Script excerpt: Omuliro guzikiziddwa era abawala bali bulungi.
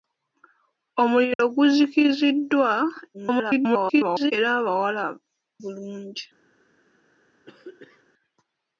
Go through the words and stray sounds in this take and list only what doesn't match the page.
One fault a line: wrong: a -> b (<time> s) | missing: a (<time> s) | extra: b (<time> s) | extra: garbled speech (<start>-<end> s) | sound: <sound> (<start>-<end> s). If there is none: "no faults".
sound: dropout (1.3-1.4 s)
extra: garbled speech (3.1-4.3 s)
missing: bali (5.0 s)
sound: throat clearing (7.5-8.0 s)